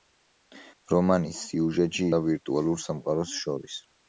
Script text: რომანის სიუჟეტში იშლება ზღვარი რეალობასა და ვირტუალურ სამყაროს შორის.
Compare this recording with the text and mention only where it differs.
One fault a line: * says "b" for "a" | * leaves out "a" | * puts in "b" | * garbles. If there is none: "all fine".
* leaves out "იშლება ზღვარი რეალობასა"